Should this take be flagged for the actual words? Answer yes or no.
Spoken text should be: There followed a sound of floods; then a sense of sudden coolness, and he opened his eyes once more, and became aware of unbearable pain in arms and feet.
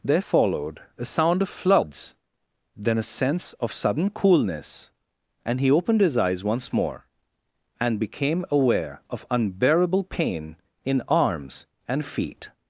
no